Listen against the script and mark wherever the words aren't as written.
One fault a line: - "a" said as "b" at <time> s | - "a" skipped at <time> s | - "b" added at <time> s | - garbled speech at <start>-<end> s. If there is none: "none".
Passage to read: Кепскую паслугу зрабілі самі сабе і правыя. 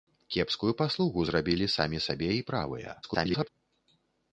- garbled speech at 3.0-3.5 s